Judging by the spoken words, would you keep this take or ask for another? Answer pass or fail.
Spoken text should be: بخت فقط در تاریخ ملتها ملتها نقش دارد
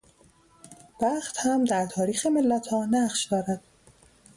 fail